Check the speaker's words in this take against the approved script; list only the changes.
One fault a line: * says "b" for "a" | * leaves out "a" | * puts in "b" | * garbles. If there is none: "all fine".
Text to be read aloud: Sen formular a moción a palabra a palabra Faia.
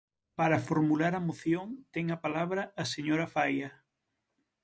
* says "Para" for "Sen"
* puts in "ten"
* says "señora" for "palabra"